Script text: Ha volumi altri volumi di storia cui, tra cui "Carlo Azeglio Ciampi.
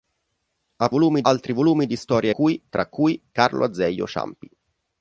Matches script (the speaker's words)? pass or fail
pass